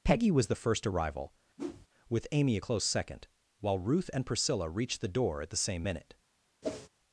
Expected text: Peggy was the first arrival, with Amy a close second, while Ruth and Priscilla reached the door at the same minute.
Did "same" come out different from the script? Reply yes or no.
no